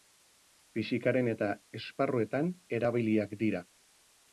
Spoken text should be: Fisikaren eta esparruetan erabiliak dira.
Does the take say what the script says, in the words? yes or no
yes